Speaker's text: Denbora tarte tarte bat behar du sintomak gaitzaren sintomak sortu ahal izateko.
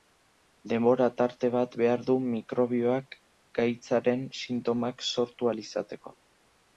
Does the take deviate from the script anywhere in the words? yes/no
yes